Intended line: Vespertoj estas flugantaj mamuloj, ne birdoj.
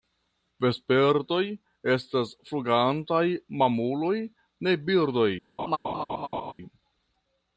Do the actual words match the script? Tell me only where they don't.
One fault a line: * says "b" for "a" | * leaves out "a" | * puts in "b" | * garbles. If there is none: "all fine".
all fine